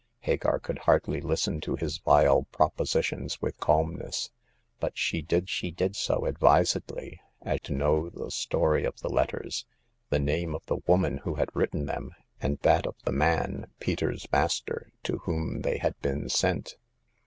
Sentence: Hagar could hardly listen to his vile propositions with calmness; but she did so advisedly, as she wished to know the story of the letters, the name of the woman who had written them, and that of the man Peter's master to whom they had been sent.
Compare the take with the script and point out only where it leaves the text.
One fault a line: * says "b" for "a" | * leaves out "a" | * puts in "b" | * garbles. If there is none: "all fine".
* puts in "she did"
* leaves out "she wished"